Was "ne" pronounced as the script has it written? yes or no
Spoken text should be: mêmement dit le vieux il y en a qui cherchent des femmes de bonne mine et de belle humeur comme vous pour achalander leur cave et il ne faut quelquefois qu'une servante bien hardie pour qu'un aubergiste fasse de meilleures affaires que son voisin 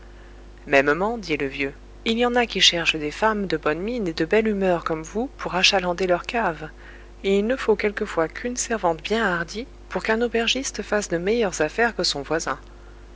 yes